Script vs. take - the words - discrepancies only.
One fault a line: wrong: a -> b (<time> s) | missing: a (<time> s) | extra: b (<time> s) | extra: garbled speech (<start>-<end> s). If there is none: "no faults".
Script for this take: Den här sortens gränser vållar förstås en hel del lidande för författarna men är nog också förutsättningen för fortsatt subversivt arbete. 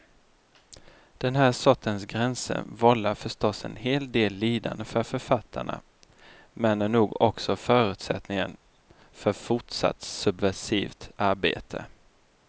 no faults